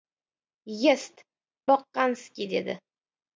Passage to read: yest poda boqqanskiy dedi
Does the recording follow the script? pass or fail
fail